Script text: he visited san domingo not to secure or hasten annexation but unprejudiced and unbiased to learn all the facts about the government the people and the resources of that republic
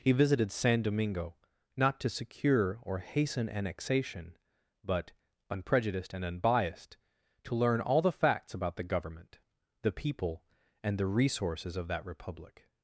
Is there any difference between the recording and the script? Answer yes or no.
no